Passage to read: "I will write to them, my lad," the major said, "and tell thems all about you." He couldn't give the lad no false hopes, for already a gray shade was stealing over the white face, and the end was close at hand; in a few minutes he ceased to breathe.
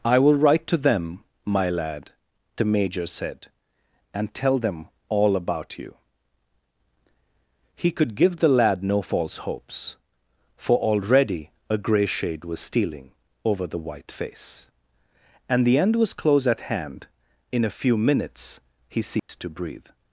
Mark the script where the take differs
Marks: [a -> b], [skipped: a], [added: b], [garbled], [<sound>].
"I will write to them, my lad," the major said, "and tell [thems -> them] all about you." He [couldn't -> could] give the lad no false hopes, for already a gray shade was stealing over the white face, and the end was close at hand; in a few minutes he ceased [dropout] to breathe.